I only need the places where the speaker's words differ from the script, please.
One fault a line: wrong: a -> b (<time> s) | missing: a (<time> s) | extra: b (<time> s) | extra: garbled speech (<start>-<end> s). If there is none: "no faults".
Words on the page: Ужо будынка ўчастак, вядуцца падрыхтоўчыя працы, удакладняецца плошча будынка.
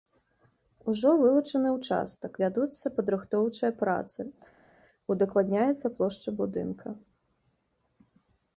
wrong: будынка -> вылучаны (1.2 s)